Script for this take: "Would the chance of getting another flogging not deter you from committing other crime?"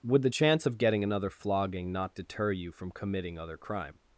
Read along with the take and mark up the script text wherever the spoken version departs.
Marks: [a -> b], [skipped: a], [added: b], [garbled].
"Would the chance of getting another flogging not deter you from committing other crime?"